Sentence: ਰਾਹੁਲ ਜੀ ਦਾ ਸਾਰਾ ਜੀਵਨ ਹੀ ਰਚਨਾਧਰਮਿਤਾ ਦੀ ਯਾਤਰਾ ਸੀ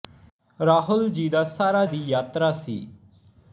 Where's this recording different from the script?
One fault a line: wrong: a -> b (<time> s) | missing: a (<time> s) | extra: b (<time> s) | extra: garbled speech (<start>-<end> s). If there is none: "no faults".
missing: ਜੀਵਨ ਹੀ ਰਚਨਾਧਰਮਿਤਾ (1.9 s)